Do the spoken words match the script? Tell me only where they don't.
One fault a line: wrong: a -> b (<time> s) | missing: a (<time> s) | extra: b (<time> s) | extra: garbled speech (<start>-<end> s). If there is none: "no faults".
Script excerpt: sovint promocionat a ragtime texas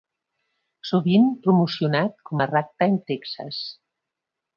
extra: com (2.3 s)